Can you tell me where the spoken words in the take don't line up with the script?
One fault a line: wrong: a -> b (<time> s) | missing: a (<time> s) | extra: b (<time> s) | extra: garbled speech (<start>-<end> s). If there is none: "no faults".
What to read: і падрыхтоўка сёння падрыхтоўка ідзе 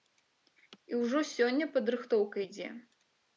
wrong: падрыхтоўка -> ўжо (1.0 s)